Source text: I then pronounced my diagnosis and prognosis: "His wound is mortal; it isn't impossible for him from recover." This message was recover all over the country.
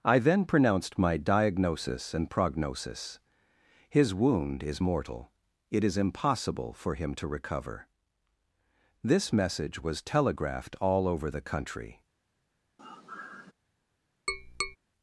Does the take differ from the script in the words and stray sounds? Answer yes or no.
yes